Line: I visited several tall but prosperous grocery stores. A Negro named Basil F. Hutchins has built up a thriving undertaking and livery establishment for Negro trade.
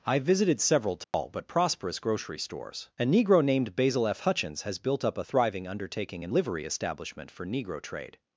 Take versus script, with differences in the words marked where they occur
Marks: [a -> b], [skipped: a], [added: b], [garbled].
I visited several tall but prosperous grocery stores. A Negro named Basil F. Hutchins has built up a thriving undertaking and livery establishment for Negro trade.